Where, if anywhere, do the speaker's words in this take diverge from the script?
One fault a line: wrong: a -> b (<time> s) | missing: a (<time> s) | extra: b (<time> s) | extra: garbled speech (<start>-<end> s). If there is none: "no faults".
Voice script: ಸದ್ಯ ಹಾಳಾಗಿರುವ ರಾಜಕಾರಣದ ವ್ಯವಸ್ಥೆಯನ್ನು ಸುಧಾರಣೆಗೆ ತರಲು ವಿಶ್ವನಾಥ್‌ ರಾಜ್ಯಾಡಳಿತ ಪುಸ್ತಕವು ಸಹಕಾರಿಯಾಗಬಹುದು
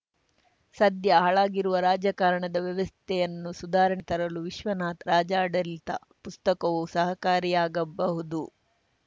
no faults